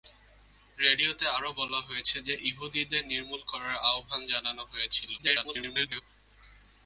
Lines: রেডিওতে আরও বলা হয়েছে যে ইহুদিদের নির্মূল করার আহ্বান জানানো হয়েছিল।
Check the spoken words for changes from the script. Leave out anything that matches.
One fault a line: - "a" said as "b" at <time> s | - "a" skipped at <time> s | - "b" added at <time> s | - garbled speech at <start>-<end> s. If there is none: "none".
- garbled speech at 5.2-6.0 s